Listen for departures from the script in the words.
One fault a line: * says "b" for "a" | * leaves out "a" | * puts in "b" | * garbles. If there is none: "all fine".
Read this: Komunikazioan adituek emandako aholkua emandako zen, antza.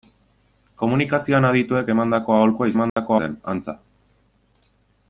all fine